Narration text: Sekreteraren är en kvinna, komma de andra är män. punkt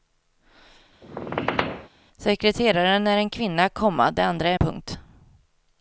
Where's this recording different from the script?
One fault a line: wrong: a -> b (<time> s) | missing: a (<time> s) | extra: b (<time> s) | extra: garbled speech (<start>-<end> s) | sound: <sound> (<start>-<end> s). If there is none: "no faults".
sound: squeak (1.0-1.9 s)
missing: män (4.6 s)